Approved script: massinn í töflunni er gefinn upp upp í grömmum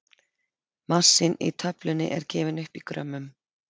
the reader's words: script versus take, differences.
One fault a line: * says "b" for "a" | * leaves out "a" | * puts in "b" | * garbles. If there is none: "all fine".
* leaves out "upp"